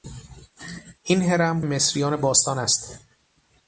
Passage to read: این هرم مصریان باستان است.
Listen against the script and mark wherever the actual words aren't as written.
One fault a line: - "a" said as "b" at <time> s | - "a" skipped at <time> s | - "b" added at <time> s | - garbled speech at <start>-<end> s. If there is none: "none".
none